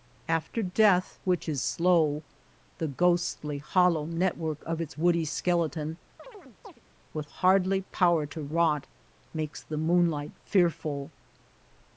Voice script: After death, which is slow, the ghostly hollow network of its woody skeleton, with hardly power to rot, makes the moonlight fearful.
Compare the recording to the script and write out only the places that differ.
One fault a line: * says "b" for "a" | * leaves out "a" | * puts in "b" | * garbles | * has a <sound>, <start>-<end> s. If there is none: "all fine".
* has a chirp, 6.2-6.8 s